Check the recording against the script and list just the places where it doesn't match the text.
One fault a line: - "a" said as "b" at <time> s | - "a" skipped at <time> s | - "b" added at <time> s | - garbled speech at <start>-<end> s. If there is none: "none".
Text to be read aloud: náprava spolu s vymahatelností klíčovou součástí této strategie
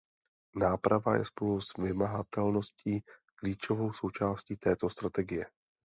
- "je" added at 1.1 s